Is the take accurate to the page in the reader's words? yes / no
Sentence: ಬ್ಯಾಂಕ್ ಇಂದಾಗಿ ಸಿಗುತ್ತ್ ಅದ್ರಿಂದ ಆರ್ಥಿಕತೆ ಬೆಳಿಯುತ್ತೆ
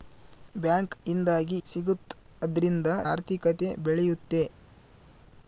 yes